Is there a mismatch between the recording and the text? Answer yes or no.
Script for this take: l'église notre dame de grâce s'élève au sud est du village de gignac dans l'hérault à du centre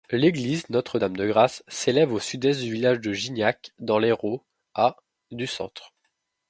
no